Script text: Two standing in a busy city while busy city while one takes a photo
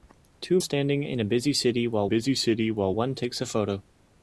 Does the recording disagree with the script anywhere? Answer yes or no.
no